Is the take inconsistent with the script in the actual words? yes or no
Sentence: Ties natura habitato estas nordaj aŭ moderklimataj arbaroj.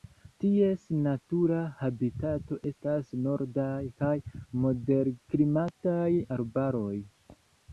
yes